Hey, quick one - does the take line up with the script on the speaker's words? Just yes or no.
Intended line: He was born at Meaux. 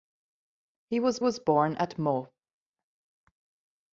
no